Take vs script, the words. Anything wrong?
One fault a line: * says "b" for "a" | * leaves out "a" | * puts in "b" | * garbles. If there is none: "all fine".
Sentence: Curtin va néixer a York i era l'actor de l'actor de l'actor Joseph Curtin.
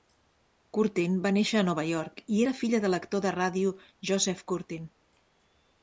* puts in "Nova"
* says "filla" for "l'actor"
* says "ràdio" for "l'actor"